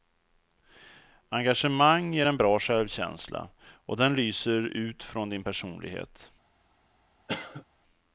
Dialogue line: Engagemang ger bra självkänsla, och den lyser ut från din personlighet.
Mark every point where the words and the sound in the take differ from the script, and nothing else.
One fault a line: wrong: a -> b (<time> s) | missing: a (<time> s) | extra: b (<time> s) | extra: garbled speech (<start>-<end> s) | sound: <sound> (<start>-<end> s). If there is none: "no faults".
extra: en (2.2 s)
sound: cough (7.3-7.6 s)